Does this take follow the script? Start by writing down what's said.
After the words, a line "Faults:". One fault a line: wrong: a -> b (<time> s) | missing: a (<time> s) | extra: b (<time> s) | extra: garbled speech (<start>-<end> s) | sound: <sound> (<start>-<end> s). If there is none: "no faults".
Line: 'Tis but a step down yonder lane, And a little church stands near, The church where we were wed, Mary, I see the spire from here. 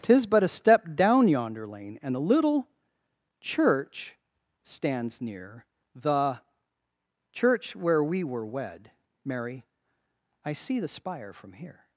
'Tis but a step down yonder lane, And a little church stands near, The church where we were wed, Mary, I see the spire from here.
Faults:
no faults